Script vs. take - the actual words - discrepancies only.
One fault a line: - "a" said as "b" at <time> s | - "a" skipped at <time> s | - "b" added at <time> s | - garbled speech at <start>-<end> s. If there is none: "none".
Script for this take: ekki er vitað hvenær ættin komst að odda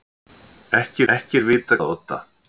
- "ekki" added at 1.1 s
- "hvenær ættin komst" skipped at 1.8 s